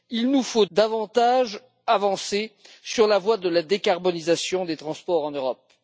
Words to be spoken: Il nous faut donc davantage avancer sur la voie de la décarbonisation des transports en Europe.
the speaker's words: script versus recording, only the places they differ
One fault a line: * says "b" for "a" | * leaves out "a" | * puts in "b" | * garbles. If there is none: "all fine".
* leaves out "donc"